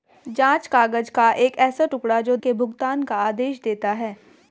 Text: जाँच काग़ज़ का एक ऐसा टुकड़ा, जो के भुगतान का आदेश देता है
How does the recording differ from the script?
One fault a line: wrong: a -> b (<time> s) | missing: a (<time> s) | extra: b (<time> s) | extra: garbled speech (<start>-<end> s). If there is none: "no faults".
no faults